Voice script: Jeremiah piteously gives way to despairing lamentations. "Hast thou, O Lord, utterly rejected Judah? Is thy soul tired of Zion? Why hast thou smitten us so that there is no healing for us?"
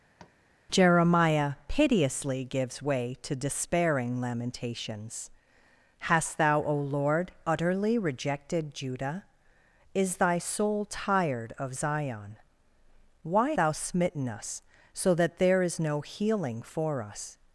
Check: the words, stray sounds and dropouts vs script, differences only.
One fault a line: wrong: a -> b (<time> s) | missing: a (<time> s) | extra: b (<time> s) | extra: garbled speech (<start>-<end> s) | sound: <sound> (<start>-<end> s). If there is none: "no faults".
sound: tap (0.2-0.4 s)
missing: hast (13.5 s)